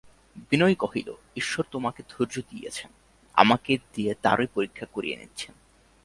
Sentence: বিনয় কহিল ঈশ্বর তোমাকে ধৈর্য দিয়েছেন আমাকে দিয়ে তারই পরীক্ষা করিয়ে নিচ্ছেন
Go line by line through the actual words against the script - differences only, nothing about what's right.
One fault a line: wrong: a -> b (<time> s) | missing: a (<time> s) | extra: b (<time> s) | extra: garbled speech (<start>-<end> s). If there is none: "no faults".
no faults